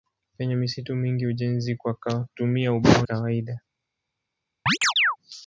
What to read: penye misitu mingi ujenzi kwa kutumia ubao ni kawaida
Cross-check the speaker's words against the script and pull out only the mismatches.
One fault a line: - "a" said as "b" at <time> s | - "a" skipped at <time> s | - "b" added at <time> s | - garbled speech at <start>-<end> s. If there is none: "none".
- "ni" skipped at 3.1 s